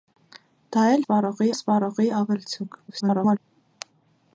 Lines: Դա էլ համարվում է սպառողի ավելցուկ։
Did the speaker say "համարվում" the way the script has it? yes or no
no